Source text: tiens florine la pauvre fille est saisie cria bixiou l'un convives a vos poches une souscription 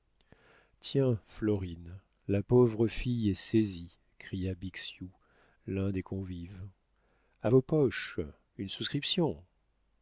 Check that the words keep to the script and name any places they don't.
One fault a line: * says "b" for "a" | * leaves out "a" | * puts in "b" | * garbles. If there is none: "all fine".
* puts in "des"